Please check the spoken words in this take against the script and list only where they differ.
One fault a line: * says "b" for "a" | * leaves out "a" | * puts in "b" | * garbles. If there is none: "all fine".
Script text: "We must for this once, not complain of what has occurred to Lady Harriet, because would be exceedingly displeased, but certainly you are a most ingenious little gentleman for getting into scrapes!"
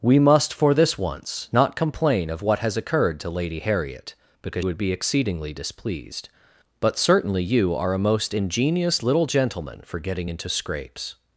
all fine